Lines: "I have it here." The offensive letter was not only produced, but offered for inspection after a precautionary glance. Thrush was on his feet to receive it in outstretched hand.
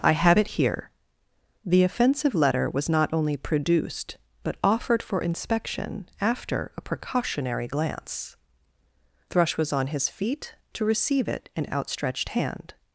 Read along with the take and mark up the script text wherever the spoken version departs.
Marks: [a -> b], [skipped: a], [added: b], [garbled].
"I have it here." The offensive letter was not only produced, but offered for inspection after a precautionary glance. Thrush was on his feet to receive it in outstretched hand.